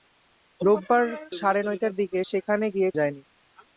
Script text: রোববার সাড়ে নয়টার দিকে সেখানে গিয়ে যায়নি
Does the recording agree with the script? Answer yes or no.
yes